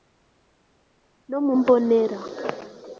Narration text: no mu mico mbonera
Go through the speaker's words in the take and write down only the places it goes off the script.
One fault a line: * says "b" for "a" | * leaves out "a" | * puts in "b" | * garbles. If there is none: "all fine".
* leaves out "mico"